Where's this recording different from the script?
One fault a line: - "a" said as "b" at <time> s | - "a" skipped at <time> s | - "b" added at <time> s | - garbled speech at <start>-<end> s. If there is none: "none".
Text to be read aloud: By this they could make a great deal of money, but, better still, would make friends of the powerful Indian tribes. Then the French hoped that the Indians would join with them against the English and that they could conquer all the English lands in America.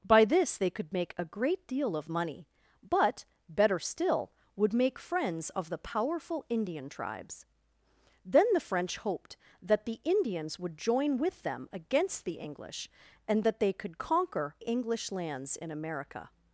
- "all the" skipped at 14.6 s